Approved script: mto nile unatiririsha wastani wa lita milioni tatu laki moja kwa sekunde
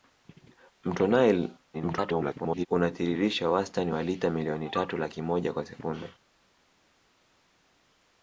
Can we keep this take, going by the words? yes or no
no